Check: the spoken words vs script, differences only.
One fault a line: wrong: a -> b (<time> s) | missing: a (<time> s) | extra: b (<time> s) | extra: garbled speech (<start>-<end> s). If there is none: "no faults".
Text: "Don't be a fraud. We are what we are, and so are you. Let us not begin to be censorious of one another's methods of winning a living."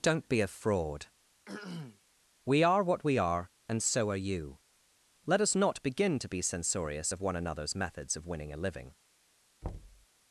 no faults